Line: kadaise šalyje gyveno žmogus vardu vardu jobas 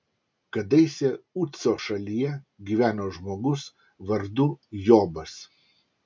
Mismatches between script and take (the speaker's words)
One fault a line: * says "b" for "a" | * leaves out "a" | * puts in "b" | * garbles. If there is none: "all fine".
* puts in "uco"
* leaves out "vardu"